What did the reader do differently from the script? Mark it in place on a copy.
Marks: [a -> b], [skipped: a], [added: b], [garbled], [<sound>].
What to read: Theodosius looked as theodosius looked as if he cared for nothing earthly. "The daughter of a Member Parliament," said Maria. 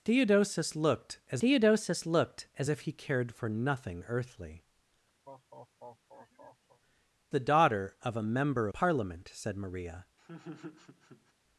Theodosius looked as theodosius looked as if he cared for nothing earthly. [laugh] "The daughter of a Member Parliament," said Maria. [laugh]